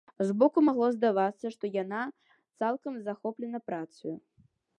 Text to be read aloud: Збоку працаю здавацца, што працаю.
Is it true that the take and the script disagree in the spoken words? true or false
true